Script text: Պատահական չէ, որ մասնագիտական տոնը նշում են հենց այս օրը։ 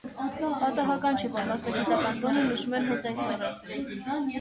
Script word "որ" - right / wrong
right